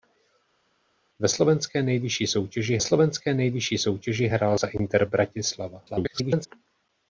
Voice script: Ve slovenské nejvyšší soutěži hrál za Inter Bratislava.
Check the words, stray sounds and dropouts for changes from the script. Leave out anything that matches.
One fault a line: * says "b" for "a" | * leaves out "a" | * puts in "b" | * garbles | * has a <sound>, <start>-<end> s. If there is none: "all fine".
* puts in "slovenské nejvyšší soutěži"
* garbles